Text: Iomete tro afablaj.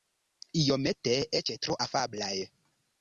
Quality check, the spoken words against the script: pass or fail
fail